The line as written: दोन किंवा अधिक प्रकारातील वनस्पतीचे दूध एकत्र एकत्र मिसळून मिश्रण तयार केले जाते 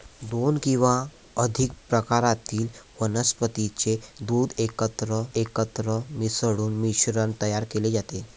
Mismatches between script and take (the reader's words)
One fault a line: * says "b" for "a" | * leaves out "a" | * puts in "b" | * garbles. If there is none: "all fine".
all fine